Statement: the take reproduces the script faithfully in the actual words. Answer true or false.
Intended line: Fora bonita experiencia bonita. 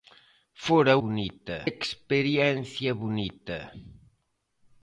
true